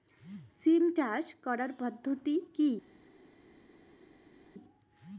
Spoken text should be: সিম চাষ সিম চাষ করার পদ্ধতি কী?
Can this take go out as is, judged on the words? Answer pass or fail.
fail